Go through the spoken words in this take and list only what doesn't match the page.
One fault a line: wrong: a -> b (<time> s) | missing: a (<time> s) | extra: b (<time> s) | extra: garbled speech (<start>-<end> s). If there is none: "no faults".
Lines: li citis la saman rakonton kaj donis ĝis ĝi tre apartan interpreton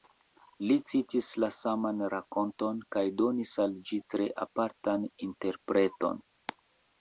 wrong: ĝis -> al (3.7 s)